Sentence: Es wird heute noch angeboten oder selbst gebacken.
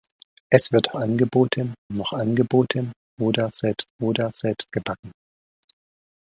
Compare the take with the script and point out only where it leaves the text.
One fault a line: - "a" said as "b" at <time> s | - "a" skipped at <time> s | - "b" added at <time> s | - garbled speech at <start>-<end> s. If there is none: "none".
- "heute" said as "angeboten" at 1.0 s
- "oder selbst" added at 4.0 s